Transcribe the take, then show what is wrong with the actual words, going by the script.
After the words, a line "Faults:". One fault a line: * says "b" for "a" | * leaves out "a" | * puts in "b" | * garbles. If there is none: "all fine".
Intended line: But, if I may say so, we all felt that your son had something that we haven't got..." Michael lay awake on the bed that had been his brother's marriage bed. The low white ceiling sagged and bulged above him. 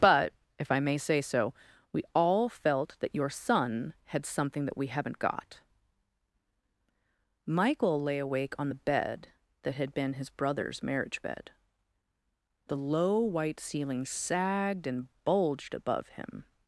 But, if I may say so, we all felt that your son had something that we haven't got..." Michael lay awake on the bed that had been his brother's marriage bed. The low white ceiling sagged and bulged above him.
Faults:
all fine